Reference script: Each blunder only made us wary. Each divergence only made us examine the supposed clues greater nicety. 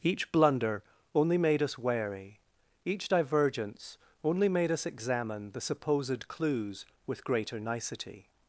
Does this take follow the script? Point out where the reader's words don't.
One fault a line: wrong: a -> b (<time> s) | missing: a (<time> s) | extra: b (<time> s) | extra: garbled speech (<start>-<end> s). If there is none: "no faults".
extra: with (7.1 s)